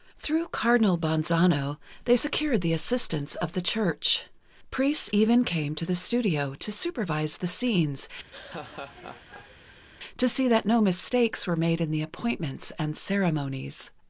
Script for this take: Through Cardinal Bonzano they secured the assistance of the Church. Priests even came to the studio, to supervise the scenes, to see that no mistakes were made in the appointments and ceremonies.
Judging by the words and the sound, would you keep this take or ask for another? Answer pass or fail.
fail